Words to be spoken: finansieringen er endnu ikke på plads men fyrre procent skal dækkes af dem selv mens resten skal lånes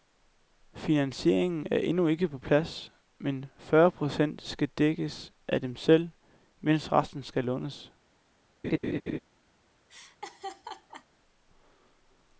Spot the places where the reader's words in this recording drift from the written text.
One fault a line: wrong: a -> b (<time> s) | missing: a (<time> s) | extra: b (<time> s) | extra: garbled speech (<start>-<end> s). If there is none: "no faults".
no faults